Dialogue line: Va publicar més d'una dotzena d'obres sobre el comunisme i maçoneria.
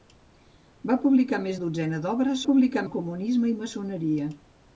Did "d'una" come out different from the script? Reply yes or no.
yes